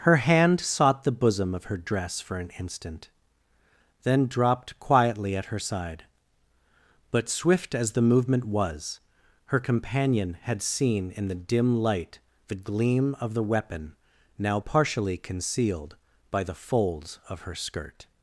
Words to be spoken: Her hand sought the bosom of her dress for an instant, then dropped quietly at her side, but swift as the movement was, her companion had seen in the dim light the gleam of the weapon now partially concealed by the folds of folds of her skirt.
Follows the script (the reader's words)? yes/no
no